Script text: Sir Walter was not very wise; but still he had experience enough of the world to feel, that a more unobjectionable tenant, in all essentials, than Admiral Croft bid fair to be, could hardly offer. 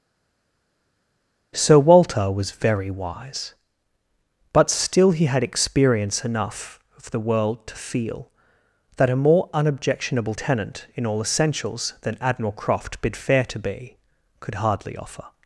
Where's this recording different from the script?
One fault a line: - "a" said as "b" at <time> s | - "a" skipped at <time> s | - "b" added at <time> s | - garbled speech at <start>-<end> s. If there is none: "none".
- "not" skipped at 2.5 s